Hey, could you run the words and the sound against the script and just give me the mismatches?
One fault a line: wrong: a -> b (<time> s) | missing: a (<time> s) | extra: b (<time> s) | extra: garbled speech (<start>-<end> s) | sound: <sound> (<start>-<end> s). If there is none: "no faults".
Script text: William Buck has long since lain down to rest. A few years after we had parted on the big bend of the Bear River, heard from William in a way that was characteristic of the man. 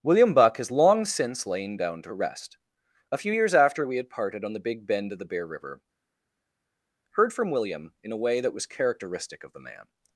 no faults